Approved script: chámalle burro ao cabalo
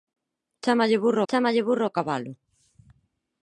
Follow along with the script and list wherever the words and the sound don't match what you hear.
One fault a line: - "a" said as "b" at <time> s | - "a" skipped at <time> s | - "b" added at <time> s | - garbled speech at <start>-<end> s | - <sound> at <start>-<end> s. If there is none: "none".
- "chámalle burro" added at 1.3 s